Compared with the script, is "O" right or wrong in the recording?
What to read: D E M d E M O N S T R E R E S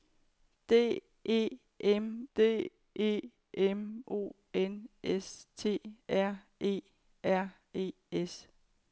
right